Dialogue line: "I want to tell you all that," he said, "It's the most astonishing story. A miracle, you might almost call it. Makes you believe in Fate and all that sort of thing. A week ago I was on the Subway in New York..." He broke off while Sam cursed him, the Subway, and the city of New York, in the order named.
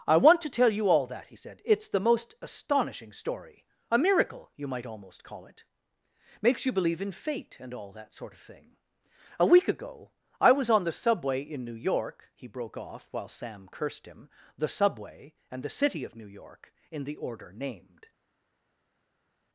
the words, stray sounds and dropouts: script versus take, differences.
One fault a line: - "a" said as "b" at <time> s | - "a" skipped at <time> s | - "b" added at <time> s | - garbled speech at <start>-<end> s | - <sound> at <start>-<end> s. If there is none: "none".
none